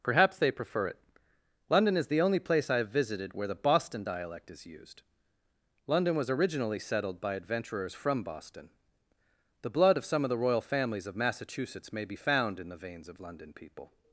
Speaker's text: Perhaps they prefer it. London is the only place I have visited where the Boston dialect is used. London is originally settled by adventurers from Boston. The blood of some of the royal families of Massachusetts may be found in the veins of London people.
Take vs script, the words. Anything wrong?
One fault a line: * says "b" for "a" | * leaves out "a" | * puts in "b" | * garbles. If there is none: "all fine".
* says "was" for "is"